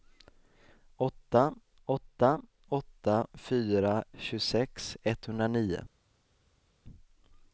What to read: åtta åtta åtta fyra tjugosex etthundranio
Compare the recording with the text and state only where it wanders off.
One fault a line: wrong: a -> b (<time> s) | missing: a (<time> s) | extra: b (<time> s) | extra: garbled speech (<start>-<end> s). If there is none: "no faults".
no faults